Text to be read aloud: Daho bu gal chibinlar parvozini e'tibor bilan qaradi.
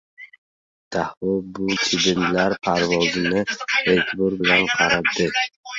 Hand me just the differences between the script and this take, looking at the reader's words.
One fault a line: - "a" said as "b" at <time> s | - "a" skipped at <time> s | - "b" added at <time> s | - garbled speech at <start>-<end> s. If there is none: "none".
- "gal" skipped at 1.7 s